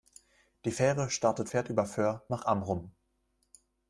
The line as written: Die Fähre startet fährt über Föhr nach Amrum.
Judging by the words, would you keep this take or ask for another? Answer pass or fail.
pass